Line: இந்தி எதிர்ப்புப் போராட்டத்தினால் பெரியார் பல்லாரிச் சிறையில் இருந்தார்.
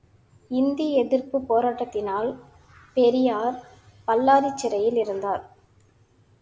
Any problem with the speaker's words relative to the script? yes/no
no